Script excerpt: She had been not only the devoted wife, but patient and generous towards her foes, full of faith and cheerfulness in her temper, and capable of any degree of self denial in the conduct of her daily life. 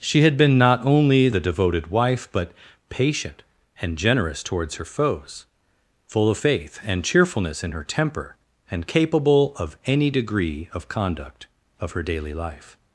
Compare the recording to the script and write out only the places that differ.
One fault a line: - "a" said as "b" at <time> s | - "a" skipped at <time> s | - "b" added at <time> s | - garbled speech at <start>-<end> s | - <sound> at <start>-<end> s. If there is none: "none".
- "self denial in the" skipped at 10.9 s